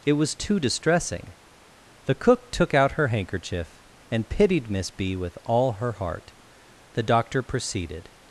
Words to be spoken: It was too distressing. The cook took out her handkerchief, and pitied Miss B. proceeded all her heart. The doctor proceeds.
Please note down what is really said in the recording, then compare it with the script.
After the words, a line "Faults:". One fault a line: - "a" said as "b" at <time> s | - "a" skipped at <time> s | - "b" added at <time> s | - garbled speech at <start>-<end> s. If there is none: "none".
It was too distressing. The cook took out her handkerchief, and pitied Miss B. with all her heart. The doctor proceeded.
Faults:
- "proceeded" said as "with" at 5.2 s
- "proceeds" said as "proceeded" at 7.4 s